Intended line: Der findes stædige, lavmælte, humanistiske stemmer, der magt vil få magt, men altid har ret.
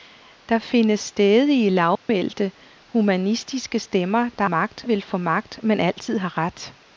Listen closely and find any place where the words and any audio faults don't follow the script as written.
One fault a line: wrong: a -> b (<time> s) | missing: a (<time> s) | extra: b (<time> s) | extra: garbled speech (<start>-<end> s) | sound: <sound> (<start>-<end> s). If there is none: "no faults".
sound: dropout (2.0-2.1 s)